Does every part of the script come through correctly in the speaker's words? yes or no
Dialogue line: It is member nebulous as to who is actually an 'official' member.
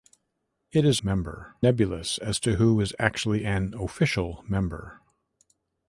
yes